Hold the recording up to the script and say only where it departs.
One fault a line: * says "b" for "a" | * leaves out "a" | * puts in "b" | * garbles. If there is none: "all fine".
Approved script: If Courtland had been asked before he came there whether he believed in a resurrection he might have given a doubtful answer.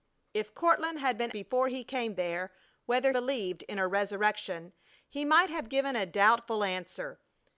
* leaves out "asked"
* leaves out "he"